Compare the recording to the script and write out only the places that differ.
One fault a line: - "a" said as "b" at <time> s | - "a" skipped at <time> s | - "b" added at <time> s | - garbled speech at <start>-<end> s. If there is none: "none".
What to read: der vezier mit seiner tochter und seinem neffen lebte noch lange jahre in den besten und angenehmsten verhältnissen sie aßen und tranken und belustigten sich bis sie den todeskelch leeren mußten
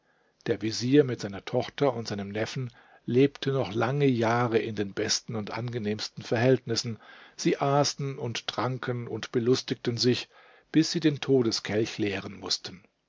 none